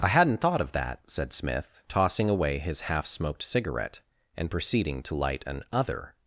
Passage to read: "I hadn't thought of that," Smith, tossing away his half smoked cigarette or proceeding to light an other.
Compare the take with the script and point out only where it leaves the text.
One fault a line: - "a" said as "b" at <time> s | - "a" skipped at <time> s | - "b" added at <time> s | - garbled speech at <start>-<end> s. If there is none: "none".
- "said" added at 1.1 s
- "or" said as "and" at 4.4 s